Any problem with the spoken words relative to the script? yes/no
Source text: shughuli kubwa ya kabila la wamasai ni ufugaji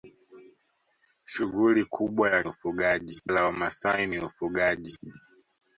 yes